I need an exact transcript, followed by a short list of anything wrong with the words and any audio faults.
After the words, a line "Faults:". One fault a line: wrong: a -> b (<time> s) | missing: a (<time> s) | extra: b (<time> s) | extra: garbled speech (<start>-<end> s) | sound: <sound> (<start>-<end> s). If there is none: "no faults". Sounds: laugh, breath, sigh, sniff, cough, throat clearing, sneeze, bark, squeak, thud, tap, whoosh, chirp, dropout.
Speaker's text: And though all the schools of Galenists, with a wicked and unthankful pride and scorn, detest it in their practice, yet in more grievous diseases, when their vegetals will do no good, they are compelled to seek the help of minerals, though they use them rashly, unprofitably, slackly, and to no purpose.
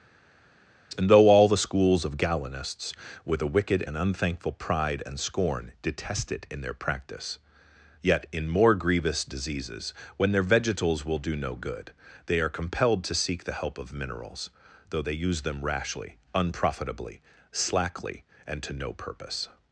And though all the schools of Galenists, with a wicked and unthankful pride and scorn, detest it in their practice, yet in more grievous diseases, when their vegetals will do no good, they are compelled to seek the help of minerals, though they use them rashly, unprofitably, slackly, and to no purpose.
Faults:
no faults